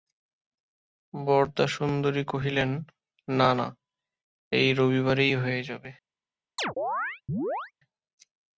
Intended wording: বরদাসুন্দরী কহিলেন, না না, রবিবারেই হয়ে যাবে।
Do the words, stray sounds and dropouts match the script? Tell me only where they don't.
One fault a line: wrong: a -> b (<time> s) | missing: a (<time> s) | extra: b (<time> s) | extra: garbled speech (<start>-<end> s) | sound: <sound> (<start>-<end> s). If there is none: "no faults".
extra: এই (4.5 s)
sound: chirp (6.6-7.7 s)